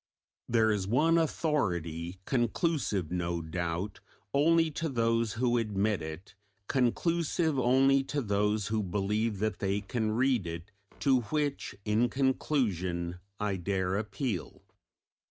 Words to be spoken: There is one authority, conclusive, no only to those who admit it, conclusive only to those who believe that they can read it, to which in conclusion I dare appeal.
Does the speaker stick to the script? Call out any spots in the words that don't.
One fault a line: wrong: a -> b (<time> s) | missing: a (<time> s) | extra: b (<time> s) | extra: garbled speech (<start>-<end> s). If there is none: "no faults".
extra: doubt (3.4 s)